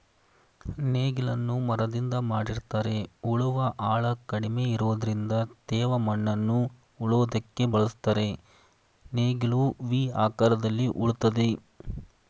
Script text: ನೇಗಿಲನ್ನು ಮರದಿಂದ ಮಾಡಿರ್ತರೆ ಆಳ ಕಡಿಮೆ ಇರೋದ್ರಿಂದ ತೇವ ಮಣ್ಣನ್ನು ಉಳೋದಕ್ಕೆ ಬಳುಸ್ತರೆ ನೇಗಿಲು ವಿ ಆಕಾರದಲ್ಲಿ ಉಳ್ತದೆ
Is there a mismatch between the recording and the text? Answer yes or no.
yes